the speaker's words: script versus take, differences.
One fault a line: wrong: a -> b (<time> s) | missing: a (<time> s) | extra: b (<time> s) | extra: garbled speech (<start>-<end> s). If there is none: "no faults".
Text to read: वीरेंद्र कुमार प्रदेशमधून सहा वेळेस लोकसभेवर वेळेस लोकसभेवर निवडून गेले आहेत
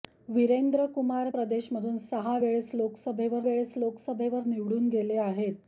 no faults